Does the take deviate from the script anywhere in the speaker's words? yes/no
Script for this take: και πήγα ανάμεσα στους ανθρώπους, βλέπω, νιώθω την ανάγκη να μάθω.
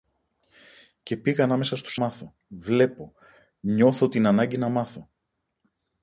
yes